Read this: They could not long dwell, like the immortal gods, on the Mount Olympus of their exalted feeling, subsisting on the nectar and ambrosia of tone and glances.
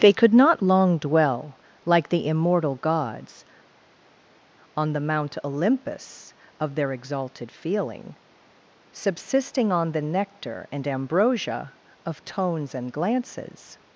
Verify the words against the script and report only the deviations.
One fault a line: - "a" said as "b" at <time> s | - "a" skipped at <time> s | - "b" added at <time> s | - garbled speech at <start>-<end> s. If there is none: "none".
- "tone" said as "tones" at 12.2 s